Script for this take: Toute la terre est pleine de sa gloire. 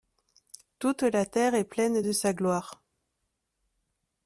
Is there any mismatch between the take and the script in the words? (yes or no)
no